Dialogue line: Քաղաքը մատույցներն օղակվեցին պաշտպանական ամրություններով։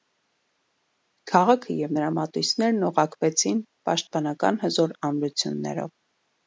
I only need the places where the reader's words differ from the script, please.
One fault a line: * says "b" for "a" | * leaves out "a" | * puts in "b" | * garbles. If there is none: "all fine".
* puts in "և նրա"
* puts in "հզոր"